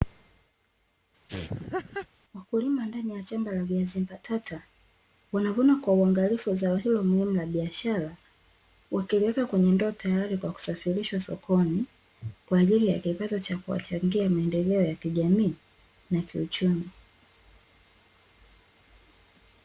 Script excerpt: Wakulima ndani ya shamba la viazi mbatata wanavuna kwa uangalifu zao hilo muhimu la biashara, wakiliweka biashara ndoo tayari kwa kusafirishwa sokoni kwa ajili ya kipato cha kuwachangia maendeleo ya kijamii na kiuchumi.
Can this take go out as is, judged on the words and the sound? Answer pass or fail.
fail